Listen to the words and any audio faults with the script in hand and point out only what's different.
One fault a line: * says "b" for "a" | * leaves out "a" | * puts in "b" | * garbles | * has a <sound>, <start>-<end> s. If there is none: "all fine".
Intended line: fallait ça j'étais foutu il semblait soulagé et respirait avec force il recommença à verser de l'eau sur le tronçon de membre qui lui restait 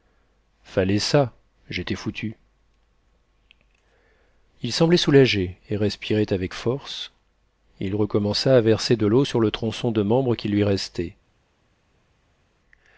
all fine